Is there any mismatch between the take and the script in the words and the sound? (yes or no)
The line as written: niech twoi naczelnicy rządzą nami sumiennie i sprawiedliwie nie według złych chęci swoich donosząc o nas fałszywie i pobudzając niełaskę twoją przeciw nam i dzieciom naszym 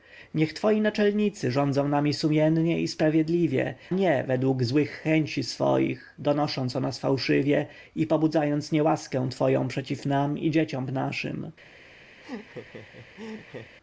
yes